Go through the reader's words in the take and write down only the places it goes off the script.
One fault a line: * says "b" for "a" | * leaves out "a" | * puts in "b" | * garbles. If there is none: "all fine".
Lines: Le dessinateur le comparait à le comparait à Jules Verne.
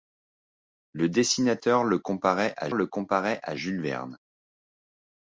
all fine